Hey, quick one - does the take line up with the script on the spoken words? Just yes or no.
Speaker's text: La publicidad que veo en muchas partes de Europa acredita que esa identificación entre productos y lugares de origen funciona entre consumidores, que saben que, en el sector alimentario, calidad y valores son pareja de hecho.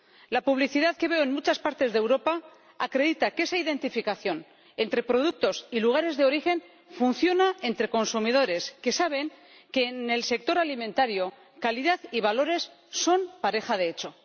yes